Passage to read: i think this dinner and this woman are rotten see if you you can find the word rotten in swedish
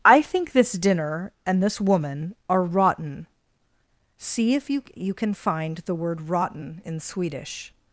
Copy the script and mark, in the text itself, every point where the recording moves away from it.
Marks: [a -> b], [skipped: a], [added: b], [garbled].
i think this dinner and this woman are rotten see if you you can find the word rotten in swedish